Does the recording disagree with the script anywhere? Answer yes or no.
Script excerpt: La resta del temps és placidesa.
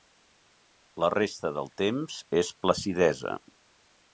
no